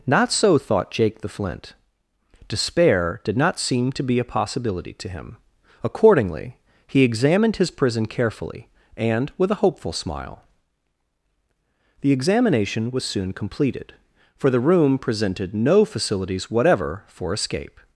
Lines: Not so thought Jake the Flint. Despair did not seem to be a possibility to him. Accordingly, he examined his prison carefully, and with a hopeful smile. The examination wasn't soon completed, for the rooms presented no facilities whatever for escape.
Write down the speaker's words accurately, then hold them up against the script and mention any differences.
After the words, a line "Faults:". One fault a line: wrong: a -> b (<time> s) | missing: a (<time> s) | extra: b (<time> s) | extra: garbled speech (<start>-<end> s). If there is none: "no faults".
Not so thought Jake the Flint. Despair did not seem to be a possibility to him. Accordingly, he examined his prison carefully, and with a hopeful smile. The examination was soon completed, for the room presented no facilities whatever for escape.
Faults:
wrong: wasn't -> was (12.9 s)
wrong: rooms -> room (14.6 s)